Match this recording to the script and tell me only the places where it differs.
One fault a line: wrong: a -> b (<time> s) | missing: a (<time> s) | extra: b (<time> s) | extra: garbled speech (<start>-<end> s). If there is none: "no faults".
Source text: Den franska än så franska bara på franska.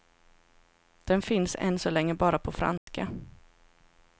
wrong: franska -> finns (1.2 s)
wrong: franska -> länge (1.9 s)